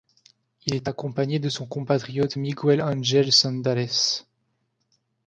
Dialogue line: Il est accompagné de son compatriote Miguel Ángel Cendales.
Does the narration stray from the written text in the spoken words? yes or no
no